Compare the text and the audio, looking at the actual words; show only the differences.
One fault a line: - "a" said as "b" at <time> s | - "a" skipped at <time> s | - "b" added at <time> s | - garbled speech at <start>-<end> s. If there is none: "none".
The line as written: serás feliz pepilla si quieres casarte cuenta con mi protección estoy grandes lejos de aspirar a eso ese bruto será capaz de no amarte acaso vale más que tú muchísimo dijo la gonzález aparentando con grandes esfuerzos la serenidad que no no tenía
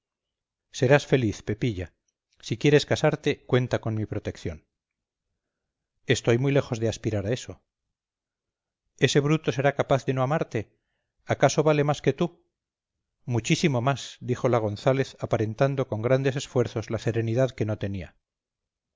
- "grandes" said as "muy" at 6.4 s
- "más" added at 13.8 s
- "no" skipped at 17.8 s